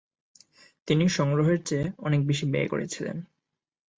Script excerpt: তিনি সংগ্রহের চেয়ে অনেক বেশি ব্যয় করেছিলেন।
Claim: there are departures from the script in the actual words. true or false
false